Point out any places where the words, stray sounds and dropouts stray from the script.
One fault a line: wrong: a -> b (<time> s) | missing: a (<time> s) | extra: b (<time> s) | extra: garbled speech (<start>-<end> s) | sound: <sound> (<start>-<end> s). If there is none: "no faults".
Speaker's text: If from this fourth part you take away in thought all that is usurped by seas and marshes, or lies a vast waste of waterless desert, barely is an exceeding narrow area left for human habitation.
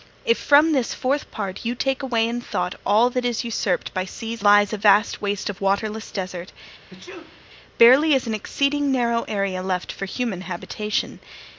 missing: and marshes or (4.4 s)
sound: sneeze (6.9-7.5 s)